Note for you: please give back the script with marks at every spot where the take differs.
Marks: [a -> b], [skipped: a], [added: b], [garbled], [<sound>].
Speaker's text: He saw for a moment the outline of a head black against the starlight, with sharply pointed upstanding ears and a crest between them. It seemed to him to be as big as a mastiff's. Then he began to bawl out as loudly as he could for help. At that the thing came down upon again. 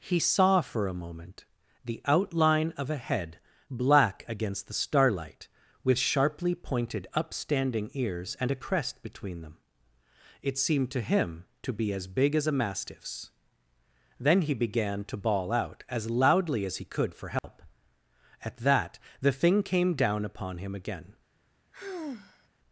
He saw for a moment the outline of a head black against the starlight, with sharply pointed upstanding ears and a crest between them. It seemed to him to be as big as a mastiff's. Then he began to bawl out as loudly as he could for help. [dropout] At that the thing came down upon [added: him] again. [sigh]